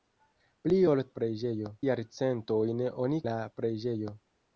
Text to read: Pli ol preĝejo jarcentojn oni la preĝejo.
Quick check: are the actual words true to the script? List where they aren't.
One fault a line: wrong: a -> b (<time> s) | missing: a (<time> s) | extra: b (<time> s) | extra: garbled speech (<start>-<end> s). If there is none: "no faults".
no faults